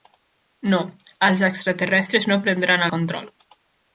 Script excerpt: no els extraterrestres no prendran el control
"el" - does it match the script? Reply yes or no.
no